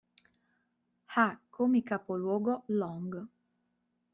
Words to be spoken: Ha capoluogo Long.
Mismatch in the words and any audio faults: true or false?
true